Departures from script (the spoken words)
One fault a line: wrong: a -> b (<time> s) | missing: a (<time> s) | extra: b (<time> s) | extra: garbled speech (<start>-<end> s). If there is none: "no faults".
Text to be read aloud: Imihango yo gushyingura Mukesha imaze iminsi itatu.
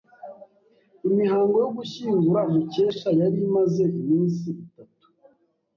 extra: yari (3.2 s)